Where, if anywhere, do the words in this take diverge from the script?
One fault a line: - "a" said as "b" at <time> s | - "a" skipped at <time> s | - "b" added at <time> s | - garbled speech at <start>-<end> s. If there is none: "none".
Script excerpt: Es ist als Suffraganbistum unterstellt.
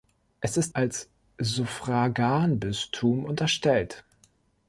none